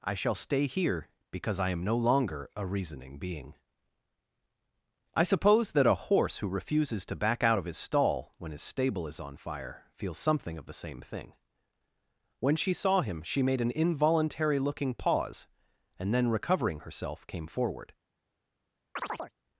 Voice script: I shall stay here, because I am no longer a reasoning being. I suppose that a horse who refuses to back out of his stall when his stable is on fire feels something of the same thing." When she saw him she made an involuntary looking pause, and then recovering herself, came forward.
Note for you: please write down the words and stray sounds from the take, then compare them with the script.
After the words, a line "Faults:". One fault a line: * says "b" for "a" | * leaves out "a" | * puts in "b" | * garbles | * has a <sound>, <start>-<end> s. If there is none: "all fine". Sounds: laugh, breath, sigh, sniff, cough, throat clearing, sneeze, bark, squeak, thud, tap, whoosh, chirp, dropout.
I shall stay here, because I am no longer a reasoning being. I suppose that a horse who refuses to back out of his stall when his stable is on fire feels something of the same thing." When she saw him she made an involuntary looking pause, and then recovering herself, came forward.
Faults:
* has a chirp, 19.0-19.3 s